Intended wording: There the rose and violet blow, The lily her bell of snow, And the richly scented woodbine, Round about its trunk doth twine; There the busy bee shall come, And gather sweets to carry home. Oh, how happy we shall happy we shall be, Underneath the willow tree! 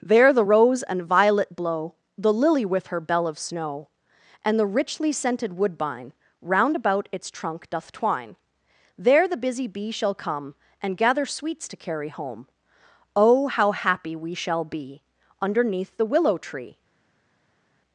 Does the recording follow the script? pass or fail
fail